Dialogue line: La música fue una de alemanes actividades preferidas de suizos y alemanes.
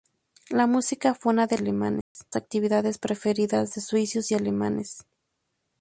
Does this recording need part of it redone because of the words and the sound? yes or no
yes